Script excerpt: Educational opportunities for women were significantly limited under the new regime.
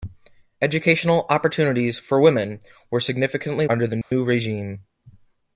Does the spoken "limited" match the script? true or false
false